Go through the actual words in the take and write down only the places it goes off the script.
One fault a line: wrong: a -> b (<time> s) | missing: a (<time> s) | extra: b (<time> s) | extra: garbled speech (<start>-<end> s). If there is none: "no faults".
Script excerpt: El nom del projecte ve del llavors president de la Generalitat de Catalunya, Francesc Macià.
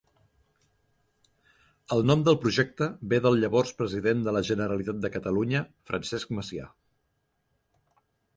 no faults